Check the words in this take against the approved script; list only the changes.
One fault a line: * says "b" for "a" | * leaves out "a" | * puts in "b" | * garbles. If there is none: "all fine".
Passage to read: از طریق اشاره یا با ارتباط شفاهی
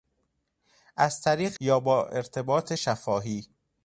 * leaves out "اشاره"